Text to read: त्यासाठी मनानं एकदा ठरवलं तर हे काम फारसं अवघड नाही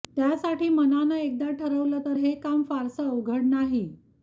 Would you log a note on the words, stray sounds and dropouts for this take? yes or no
no